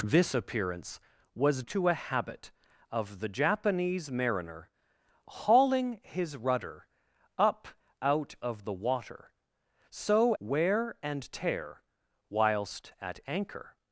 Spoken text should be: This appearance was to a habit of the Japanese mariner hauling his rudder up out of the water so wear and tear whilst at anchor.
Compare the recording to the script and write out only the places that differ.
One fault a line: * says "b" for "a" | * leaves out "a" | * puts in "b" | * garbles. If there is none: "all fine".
all fine